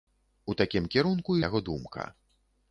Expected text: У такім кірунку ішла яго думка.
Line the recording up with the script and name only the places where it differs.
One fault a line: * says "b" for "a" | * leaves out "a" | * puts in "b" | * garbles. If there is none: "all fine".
* leaves out "ішла"